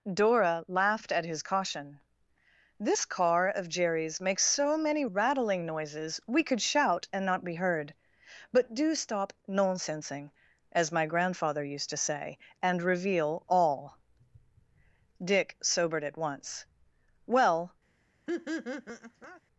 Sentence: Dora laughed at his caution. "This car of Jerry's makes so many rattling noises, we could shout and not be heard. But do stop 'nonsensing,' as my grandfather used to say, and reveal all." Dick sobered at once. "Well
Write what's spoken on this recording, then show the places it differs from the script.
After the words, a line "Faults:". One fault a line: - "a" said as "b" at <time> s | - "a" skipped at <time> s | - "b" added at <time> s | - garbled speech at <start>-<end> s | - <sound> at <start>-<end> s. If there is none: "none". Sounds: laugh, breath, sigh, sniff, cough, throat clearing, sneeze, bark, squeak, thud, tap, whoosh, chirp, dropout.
Dora laughed at his caution. "This car of Jerry's makes so many rattling noises, we could shout and not be heard. But do stop 'nonsensing,' as my grandfather used to say, and reveal all." Dick sobered at once. "Well
Faults:
- laugh at 18.3-19.4 s